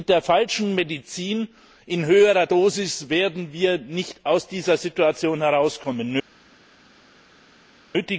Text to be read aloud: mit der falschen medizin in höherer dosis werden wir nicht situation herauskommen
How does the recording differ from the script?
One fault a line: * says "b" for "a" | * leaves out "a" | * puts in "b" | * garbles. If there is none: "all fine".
* puts in "aus dieser"